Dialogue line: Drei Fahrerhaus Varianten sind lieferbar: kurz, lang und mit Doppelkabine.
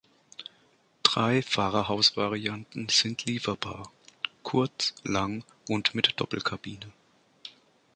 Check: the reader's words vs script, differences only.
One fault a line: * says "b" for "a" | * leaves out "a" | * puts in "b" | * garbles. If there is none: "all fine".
all fine